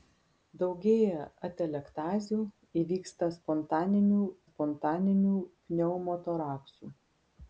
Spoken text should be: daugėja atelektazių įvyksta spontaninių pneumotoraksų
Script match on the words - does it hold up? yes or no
no